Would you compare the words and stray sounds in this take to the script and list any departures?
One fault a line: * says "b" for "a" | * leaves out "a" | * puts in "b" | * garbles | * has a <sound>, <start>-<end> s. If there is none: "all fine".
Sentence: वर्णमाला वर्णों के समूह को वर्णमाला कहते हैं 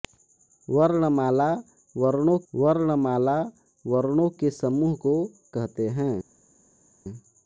* puts in "वर्णमाला वर्णों"
* leaves out "वर्णमाला"